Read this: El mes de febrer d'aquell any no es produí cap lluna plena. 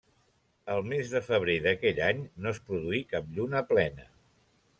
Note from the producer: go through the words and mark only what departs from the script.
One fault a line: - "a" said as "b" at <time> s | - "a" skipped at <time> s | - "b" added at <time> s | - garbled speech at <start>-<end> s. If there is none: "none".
none